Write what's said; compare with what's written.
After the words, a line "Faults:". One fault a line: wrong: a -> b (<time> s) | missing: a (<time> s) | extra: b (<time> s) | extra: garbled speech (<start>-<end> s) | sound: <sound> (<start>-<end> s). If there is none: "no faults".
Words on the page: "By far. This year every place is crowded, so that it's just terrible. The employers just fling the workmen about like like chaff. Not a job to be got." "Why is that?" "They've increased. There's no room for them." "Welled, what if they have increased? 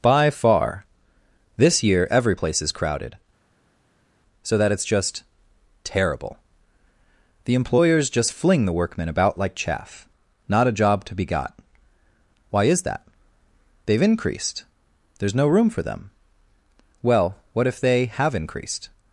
"By far. This year every place is crowded, so that it's just terrible. The employers just fling the workmen about like chaff. Not a job to be got." "Why is that?" "They've increased. There's no room for them." "Well, what if they have increased?
Faults:
missing: like (9.5 s)
wrong: Welled -> Well (17.0 s)